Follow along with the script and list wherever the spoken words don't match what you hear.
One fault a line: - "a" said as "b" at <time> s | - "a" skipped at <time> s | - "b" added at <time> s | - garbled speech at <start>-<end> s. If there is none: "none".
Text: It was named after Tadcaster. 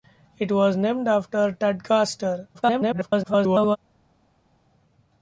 - garbled speech at 2.5-3.8 s